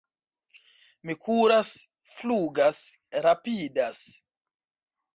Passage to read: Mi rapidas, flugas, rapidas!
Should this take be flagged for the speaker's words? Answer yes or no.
yes